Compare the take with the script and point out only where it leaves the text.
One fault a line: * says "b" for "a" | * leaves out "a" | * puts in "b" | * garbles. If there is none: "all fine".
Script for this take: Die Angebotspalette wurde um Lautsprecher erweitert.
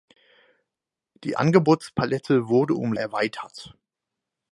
* leaves out "Lautsprecher"